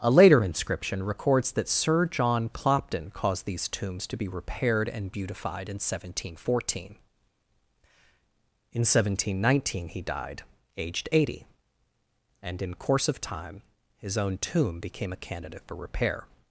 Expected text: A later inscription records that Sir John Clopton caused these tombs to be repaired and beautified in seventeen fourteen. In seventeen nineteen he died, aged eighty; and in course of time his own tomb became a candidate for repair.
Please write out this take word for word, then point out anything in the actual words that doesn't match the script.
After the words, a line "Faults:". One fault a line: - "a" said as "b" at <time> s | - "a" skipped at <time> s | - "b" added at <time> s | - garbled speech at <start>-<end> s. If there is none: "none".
A later inscription records that Sir John Clopton caused these tombs to be repaired and beautified in seventeen fourteen. In seventeen nineteen he died, aged eighty; and in course of time his own tomb became a candidate for repair.
Faults:
none